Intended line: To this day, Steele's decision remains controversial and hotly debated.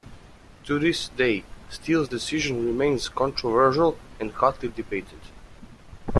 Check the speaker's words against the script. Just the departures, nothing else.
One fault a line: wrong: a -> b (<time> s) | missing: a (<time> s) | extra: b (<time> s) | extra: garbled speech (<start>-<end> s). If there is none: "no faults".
no faults